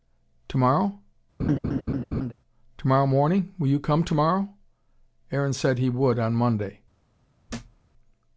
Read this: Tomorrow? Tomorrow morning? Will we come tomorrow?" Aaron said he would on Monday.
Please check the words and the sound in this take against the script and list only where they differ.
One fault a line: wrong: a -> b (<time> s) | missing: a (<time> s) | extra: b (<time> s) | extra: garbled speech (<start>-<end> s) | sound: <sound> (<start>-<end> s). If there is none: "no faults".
sound: laugh (1.4-2.3 s)
wrong: we -> you (3.7 s)
sound: thud (7.5-7.8 s)